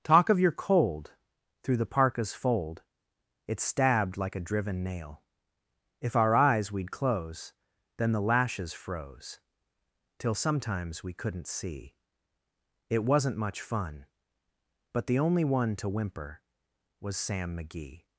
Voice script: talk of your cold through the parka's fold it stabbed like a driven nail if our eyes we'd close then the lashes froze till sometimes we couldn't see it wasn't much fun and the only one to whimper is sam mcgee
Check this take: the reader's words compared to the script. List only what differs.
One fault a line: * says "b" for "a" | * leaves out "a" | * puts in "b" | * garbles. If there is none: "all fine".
* says "but" for "and"
* says "was" for "is"